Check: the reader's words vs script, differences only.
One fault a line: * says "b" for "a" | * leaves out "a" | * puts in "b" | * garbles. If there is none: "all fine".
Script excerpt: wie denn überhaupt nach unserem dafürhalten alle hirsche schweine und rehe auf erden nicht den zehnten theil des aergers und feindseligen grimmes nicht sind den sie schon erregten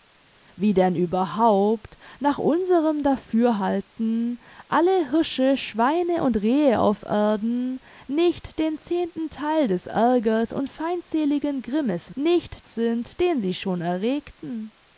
all fine